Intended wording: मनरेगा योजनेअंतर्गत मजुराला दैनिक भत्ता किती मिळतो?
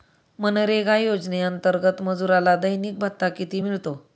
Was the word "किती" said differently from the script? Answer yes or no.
no